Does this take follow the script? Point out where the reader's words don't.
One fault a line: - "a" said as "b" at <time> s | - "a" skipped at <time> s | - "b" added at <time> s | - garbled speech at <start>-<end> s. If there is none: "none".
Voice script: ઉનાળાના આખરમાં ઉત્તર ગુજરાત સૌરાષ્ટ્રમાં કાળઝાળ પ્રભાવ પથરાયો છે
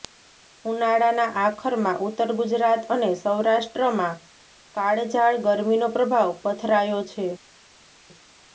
- "અને" added at 3.0 s
- "ગરમીનો" added at 5.5 s